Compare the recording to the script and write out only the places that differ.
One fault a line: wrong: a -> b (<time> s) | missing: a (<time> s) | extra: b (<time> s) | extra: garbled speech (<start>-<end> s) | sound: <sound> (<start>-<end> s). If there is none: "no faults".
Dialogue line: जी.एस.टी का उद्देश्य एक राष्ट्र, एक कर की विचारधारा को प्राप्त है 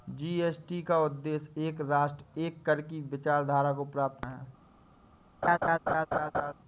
sound: laugh (5.4-6.5 s)